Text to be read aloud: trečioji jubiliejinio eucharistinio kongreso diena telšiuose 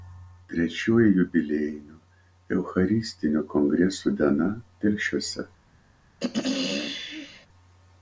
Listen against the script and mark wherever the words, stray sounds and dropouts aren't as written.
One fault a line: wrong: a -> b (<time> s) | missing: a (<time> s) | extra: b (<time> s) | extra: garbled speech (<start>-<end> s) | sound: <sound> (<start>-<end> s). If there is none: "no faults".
sound: throat clearing (6.2-7.5 s)